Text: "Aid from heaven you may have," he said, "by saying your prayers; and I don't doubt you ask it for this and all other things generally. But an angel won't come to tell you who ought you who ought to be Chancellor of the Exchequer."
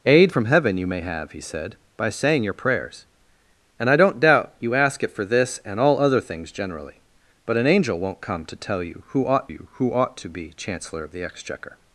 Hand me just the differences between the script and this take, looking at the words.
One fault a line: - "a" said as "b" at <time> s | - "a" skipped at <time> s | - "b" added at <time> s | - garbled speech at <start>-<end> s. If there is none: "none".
none